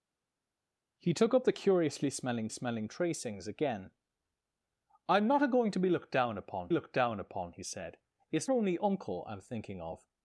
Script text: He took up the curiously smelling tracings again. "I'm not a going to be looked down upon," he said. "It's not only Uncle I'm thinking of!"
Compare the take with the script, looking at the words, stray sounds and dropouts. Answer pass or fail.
fail